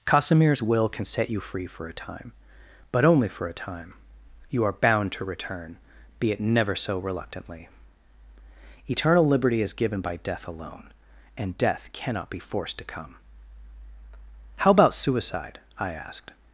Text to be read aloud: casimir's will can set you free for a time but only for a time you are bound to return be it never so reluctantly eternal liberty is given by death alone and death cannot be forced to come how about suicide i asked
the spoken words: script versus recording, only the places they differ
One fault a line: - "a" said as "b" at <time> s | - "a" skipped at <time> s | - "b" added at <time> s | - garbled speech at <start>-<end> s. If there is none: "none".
none